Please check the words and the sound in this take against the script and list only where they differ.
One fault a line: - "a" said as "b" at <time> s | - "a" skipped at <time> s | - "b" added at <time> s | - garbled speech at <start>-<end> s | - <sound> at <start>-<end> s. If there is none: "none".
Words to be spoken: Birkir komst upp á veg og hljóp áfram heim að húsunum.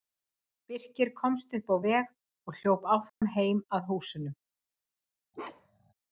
- dropout at 3.1-3.2 s
- bark at 5.3-5.9 s